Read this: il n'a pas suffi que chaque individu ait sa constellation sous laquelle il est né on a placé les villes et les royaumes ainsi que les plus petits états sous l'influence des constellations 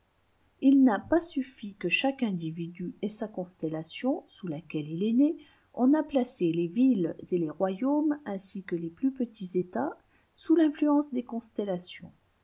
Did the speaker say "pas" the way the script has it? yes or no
yes